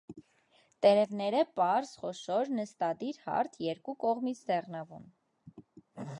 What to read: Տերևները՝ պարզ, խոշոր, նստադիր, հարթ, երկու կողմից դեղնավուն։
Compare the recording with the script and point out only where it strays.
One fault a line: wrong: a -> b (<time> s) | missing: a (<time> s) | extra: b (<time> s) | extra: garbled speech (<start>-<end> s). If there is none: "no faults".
no faults